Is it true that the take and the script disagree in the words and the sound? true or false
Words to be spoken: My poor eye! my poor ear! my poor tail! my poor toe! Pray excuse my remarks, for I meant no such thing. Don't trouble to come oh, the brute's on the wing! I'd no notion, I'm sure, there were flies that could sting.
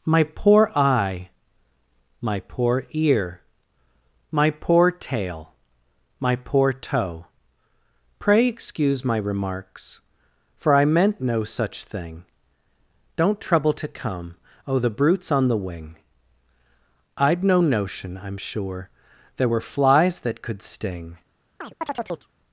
true